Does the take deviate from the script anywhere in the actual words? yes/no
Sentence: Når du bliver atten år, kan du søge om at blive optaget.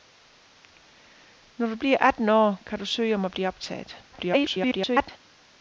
yes